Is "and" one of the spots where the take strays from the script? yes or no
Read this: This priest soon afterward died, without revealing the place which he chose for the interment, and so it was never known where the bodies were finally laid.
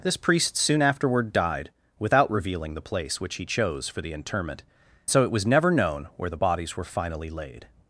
yes